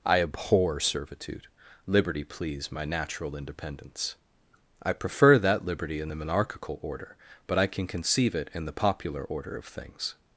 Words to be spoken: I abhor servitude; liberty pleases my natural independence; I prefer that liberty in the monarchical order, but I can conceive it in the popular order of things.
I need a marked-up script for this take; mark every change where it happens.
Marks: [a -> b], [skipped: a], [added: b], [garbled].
I abhor servitude; liberty [pleases -> please] my natural independence; I prefer that liberty in the monarchical order, but I can conceive it in the popular order of things.